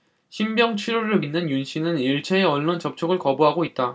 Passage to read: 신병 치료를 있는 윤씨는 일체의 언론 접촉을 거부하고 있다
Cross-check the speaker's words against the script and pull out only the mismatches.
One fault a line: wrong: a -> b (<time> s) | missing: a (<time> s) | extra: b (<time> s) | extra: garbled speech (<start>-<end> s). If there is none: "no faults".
no faults